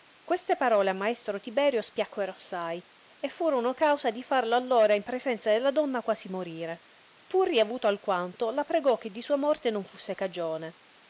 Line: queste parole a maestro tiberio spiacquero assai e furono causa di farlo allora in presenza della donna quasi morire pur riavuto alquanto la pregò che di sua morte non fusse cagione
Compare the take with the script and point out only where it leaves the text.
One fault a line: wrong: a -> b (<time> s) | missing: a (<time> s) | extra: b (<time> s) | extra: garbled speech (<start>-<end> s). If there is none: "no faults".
no faults